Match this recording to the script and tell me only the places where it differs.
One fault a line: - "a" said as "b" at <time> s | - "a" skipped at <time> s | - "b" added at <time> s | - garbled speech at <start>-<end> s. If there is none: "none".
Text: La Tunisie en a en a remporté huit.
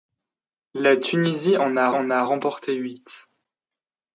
none